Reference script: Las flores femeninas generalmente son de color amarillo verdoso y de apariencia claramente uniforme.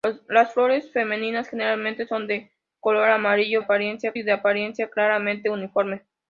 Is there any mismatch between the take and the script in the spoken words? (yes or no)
yes